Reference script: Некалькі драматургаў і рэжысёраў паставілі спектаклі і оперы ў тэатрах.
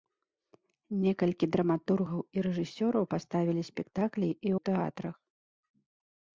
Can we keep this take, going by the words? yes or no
no